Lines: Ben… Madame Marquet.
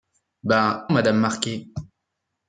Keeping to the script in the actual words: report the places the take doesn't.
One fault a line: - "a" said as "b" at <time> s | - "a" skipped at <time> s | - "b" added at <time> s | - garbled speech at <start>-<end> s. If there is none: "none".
none